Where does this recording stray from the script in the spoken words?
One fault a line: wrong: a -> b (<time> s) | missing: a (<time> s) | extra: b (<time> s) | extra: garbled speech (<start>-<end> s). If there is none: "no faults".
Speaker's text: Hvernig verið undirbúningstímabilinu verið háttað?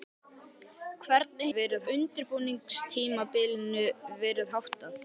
no faults